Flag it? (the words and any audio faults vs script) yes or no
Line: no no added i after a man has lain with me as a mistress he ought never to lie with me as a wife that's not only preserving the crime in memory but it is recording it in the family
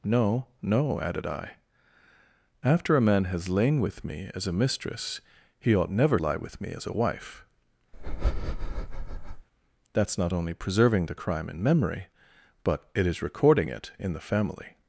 yes